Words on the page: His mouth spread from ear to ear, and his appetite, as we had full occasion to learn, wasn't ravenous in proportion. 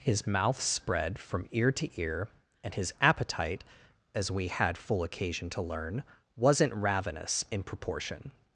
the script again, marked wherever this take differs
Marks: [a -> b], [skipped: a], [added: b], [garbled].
His mouth spread from ear to ear, and his appetite, as we had full occasion to learn, wasn't ravenous in proportion.